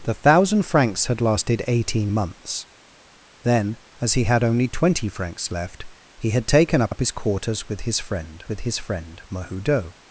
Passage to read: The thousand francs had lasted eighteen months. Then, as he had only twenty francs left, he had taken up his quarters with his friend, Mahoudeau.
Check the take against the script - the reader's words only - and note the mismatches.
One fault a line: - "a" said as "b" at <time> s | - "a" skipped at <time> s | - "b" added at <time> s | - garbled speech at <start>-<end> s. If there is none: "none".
- "up" added at 6.9 s
- "with his friend" added at 8.5 s